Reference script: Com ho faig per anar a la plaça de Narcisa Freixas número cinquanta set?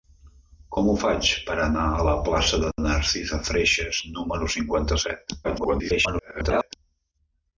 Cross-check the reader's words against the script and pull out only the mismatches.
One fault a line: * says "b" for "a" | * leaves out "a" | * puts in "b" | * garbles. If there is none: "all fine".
* garbles